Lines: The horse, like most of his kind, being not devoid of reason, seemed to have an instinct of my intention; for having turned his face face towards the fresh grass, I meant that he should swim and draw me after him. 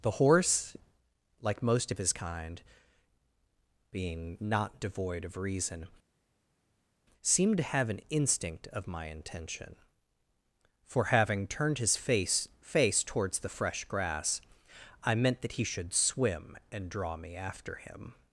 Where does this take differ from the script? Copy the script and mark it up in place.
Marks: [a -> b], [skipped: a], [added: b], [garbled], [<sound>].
The horse, like most of his kind, being not devoid of reason, seemed to have an instinct of my intention; for having turned his face face towards the fresh grass, I meant that he should swim and draw me after him.